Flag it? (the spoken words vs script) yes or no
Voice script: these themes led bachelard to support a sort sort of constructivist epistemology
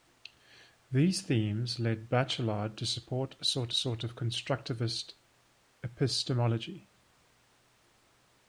no